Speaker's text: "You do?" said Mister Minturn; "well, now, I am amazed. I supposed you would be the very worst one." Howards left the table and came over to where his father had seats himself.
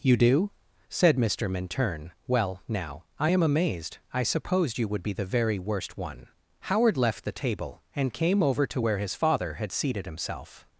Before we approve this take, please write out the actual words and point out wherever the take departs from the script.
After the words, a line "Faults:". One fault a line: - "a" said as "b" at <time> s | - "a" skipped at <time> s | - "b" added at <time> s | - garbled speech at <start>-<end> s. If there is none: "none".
"You do?" said Mister Minturn; "well, now, I am amazed. I supposed you would be the very worst one." Howard left the table and came over to where his father had seated himself.
Faults:
- "Howards" said as "Howard" at 6.6 s
- "seats" said as "seated" at 9.7 s